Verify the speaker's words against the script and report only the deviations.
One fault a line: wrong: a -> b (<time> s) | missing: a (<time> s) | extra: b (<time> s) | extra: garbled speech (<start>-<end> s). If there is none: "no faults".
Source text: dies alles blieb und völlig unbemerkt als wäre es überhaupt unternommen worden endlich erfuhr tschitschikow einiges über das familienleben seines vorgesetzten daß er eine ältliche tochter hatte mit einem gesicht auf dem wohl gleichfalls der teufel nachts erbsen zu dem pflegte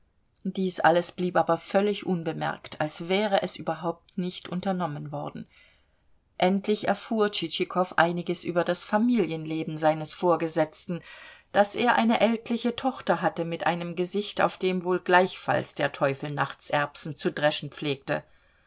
wrong: und -> aber (1.4 s)
extra: nicht (4.2 s)
wrong: dem -> dreschen (17.3 s)